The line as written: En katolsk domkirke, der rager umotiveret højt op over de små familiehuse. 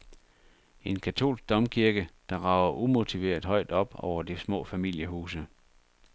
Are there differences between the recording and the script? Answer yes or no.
no